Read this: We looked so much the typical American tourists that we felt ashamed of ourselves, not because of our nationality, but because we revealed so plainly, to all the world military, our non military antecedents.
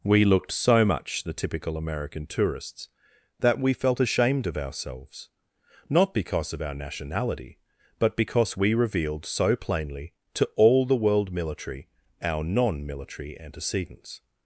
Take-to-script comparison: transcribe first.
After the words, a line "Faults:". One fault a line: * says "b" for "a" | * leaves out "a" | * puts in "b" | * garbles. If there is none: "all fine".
We looked so much the typical American tourists that we felt ashamed of ourselves, not because of our nationality, but because we revealed so plainly, to all the world military, our non military antecedents.
Faults:
all fine